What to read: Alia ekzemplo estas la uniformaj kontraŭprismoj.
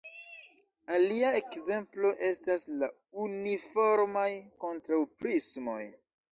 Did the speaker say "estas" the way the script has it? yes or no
yes